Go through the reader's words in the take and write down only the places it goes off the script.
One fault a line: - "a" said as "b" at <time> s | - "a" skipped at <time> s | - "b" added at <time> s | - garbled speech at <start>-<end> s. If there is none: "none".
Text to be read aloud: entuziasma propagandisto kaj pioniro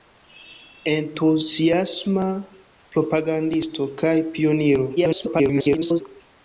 - garbled speech at 5.0-6.0 s